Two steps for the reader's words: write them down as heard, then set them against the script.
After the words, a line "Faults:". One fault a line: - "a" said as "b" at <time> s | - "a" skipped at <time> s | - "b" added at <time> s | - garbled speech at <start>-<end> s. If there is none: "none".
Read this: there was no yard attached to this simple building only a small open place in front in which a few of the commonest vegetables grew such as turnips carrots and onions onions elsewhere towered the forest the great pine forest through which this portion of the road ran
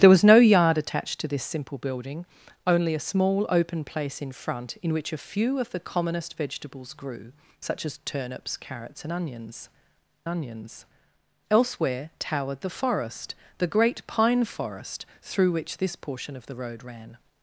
there was no yard attached to this simple building only a small open place in front in which a few of the commonest vegetables grew such as turnips carrots and onions onions elsewhere towered the forest the great pine forest through which this portion of the road ran
Faults:
none